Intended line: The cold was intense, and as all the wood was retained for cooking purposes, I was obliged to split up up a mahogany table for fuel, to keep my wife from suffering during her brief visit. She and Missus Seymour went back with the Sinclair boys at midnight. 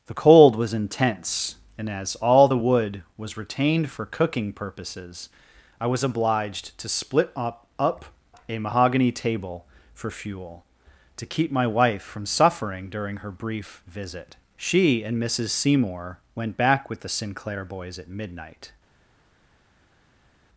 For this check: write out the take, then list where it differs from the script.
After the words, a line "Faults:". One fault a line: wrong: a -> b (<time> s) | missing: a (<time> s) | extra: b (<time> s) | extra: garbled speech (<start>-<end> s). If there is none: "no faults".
The cold was intense, and as all the wood was retained for cooking purposes, I was obliged to split up up a mahogany table for fuel, to keep my wife from suffering during her brief visit. She and Missus Seymour went back with the Sinclair boys at midnight.
Faults:
no faults